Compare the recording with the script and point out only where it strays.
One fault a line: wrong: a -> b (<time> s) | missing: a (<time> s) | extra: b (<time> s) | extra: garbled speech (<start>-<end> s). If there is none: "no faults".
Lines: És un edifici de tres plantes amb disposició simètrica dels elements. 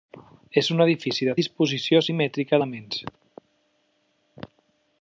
missing: tres plantes amb (1.4 s)
missing: dels (2.6 s)